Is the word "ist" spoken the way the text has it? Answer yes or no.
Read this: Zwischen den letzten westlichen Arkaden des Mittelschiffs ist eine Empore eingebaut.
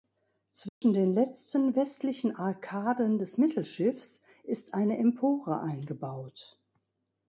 yes